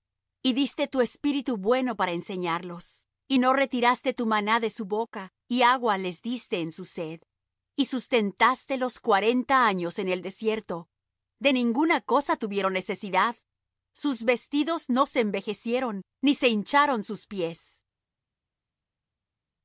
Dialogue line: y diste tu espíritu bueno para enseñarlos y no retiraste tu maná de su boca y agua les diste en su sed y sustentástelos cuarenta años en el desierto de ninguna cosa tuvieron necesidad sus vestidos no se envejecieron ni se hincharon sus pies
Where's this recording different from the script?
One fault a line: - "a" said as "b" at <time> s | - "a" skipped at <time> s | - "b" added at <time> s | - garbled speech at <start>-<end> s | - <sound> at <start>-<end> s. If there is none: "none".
none